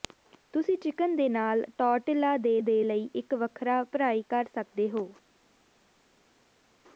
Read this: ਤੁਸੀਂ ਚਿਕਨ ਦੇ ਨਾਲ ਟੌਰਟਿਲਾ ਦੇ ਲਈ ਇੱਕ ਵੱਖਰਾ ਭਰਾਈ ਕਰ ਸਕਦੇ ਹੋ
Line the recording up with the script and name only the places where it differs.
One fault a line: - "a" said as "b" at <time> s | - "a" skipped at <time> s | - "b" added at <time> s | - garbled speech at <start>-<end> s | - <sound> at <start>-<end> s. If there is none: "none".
- "ਦੇ" added at 2.6 s